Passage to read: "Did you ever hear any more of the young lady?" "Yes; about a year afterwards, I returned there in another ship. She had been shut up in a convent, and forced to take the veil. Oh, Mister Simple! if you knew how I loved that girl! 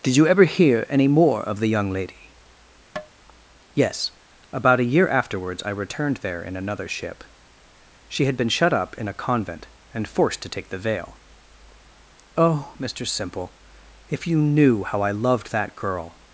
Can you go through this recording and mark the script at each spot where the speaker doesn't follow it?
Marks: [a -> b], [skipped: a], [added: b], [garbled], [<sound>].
"Did you ever hear any more of the young lady?" [tap] "Yes; about a year afterwards, I returned there in another ship. She had been shut up in a convent, and forced to take the veil. Oh, Mister Simple! if you knew how I loved that girl!